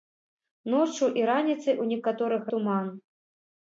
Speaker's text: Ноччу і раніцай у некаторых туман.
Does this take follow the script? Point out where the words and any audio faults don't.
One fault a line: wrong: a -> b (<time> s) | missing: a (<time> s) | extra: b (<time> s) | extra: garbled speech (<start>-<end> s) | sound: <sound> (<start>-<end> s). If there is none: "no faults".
no faults